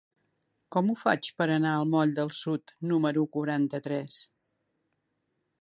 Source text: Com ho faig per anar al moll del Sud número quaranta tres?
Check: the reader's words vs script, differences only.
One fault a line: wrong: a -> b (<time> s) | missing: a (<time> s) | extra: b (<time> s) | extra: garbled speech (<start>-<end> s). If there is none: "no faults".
no faults